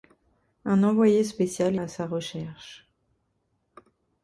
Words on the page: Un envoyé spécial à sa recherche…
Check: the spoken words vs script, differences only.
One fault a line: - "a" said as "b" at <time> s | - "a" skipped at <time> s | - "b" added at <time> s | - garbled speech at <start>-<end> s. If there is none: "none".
none